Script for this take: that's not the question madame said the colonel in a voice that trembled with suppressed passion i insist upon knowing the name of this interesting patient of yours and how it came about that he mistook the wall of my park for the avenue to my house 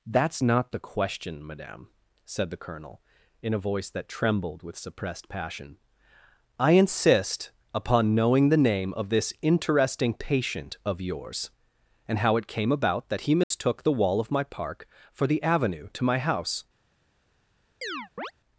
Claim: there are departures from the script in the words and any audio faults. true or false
true